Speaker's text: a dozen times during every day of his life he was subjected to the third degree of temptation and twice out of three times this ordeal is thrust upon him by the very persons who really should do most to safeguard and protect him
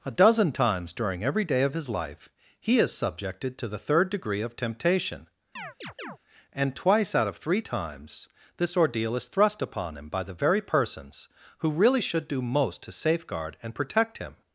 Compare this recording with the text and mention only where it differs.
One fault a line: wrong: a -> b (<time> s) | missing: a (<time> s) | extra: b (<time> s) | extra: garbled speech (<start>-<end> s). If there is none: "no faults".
wrong: was -> is (2.8 s)